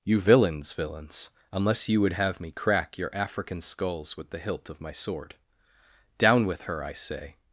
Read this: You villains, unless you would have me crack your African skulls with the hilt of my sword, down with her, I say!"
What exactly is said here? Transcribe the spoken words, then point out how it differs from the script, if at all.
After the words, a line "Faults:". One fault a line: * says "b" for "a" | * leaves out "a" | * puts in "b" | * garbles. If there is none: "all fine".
You villains villains, unless you would have me crack your African skulls with the hilt of my sword, down with her, I say!"
Faults:
* puts in "villains"